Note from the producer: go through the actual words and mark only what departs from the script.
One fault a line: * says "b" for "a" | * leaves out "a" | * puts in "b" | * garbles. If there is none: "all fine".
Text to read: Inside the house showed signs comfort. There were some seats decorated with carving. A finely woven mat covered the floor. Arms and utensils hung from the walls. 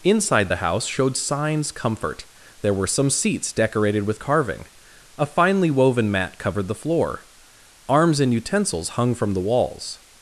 all fine